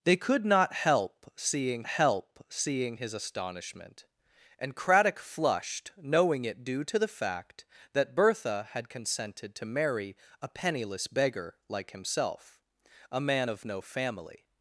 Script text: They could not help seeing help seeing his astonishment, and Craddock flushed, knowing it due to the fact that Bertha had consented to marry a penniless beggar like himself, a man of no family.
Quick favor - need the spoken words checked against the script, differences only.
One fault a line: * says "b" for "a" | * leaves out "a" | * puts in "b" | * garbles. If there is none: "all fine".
all fine